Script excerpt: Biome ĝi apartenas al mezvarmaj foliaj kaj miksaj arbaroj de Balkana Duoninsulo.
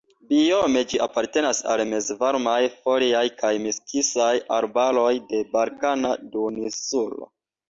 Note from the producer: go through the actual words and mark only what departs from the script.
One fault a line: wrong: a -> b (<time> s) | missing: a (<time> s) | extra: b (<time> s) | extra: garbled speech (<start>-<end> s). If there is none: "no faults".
no faults